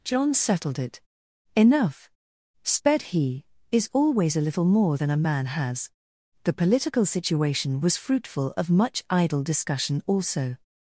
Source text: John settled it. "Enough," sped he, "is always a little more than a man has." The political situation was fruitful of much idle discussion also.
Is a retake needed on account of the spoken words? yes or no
no